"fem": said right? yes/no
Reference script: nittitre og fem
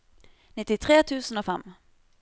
yes